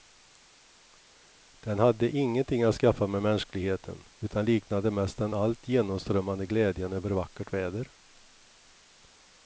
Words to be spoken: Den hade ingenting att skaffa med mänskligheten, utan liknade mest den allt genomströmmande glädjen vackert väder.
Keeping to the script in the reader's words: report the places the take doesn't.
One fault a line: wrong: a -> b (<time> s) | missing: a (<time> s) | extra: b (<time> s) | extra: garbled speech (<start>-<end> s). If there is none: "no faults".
extra: över (6.9 s)